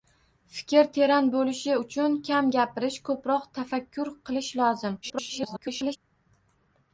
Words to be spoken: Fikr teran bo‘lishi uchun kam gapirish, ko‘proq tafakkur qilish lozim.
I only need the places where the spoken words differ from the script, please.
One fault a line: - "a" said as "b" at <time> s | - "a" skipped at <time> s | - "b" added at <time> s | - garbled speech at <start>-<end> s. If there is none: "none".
- garbled speech at 5.0-6.0 s